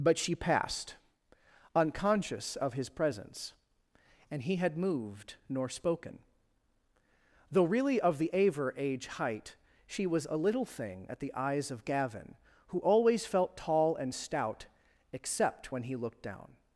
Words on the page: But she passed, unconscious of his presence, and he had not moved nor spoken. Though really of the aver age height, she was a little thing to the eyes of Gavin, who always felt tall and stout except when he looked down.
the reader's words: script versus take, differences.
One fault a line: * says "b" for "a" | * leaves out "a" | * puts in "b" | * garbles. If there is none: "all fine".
* leaves out "not"
* says "at" for "to"